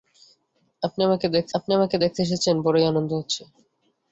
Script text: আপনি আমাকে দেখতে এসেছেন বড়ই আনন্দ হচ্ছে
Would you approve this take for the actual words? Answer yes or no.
no